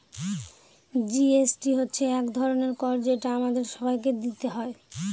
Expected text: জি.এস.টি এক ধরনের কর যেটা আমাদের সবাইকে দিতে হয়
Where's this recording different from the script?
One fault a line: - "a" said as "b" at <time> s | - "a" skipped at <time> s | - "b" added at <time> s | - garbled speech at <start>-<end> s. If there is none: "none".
- "হচ্ছে" added at 1.8 s